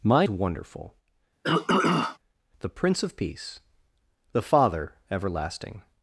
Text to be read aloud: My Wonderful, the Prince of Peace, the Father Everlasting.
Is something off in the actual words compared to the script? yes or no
no